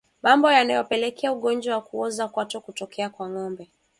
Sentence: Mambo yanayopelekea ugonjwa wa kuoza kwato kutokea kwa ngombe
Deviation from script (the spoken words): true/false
false